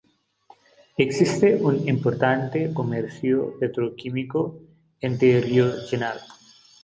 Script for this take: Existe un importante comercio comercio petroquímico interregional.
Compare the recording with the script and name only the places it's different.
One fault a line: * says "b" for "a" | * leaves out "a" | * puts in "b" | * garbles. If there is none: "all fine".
* leaves out "comercio"